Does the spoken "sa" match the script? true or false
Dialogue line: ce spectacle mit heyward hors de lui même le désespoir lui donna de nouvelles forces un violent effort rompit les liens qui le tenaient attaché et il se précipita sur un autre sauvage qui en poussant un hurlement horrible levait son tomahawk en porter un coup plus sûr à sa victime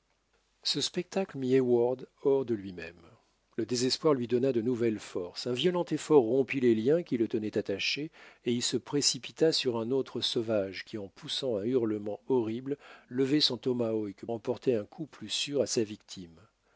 true